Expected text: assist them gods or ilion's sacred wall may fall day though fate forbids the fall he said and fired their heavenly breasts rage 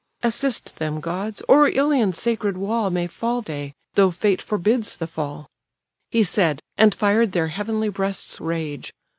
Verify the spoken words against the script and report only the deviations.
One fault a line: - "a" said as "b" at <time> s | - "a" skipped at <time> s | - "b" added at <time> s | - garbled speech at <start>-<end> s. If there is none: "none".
none